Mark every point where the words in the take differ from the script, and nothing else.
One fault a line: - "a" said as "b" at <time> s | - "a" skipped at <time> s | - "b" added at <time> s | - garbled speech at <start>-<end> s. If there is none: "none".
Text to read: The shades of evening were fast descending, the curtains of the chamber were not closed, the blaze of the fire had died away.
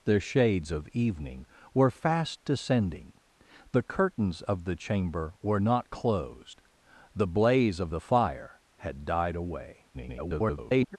- garbled speech at 9.9-11.0 s